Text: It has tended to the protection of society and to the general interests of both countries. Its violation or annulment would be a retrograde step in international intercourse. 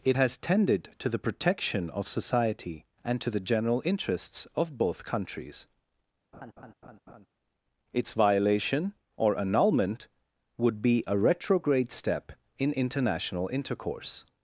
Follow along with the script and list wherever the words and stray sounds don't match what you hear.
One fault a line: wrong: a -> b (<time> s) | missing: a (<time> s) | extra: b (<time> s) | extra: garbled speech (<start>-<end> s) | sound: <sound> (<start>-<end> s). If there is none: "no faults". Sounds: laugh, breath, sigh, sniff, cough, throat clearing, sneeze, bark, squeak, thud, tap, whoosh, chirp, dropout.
sound: laugh (6.3-7.3 s)